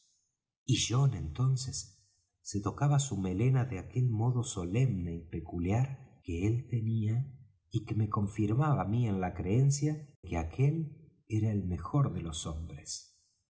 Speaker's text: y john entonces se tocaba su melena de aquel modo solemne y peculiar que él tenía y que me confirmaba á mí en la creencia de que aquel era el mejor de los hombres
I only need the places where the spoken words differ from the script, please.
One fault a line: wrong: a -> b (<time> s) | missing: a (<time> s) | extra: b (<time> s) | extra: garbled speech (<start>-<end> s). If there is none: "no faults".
missing: de (9.9 s)